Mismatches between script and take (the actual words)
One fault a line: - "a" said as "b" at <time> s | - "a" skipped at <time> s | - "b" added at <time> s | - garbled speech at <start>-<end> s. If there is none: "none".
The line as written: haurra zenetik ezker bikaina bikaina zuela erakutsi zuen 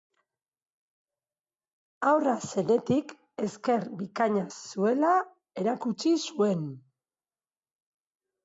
- "bikaina" skipped at 4.5 s